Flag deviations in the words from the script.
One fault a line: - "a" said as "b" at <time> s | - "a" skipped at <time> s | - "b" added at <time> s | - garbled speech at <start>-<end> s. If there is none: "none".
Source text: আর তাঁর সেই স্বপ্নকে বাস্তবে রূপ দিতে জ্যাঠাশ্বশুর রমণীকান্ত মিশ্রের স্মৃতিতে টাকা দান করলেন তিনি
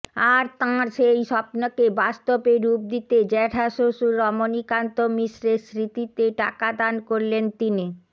none